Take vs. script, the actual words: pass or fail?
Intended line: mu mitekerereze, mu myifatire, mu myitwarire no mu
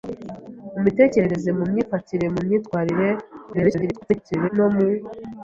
fail